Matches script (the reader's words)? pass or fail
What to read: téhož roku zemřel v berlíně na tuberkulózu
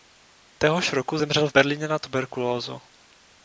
pass